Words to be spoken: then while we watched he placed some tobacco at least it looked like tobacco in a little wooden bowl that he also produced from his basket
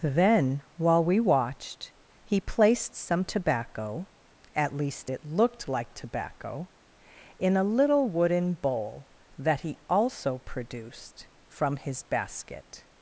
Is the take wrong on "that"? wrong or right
right